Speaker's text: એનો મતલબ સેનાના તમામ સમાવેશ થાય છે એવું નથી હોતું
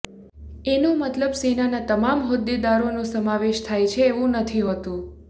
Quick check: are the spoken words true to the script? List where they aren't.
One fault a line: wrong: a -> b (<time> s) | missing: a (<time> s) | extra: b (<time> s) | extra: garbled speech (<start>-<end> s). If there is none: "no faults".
extra: હોદ્દેદારોનો (2.3 s)